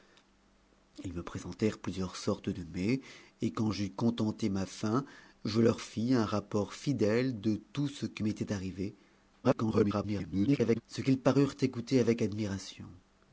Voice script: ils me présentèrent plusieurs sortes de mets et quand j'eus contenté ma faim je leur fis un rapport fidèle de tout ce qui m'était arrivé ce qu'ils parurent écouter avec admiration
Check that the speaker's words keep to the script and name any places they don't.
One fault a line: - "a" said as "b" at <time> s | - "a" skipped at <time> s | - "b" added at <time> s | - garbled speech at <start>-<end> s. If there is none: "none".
- garbled speech at 9.4-10.8 s